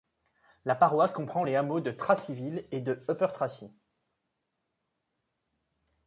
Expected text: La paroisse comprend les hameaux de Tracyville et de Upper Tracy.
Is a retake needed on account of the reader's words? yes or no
no